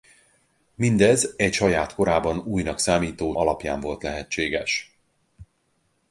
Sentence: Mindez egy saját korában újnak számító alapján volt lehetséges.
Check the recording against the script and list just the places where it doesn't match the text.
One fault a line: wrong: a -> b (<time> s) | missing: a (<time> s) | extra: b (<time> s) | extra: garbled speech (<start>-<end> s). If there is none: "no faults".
no faults